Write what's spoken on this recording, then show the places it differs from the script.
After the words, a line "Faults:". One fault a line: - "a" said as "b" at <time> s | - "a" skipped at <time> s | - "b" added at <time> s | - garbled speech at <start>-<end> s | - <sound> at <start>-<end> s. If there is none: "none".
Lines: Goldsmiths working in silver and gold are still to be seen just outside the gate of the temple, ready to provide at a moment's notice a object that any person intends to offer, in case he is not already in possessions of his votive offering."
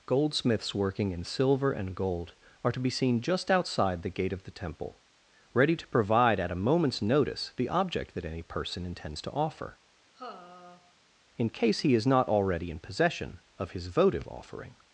Goldsmiths working in silver and gold are to be seen just outside the gate of the temple, ready to provide at a moment's notice the object that any person intends to offer, in case he is not already in possession of his votive offering."
Faults:
- "still" skipped at 2.7 s
- "a" said as "the" at 7.6 s
- sigh at 10.1-10.9 s
- "possessions" said as "possession" at 12.8 s